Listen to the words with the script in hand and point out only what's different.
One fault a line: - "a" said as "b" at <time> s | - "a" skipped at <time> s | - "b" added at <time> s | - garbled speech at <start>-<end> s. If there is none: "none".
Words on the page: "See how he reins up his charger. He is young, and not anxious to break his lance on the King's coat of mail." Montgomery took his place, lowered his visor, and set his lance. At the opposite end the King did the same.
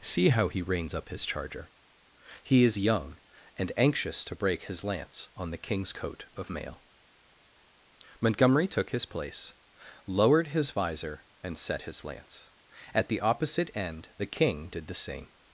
- "not" skipped at 3.7 s